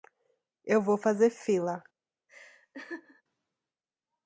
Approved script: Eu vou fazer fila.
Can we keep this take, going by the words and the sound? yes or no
no